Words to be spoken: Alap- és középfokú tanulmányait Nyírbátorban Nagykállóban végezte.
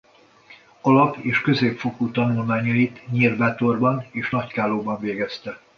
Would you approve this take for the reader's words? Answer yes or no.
no